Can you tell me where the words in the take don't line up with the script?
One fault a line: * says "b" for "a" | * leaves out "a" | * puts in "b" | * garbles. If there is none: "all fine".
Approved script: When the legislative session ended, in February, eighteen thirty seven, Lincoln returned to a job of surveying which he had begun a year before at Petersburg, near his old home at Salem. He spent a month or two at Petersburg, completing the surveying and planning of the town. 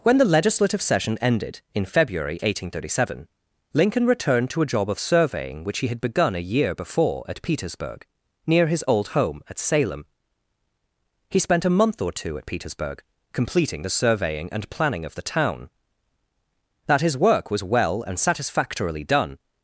* puts in "That his work was well and satisfactorily done"